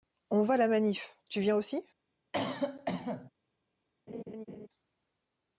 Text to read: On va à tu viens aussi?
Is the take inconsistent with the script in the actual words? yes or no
yes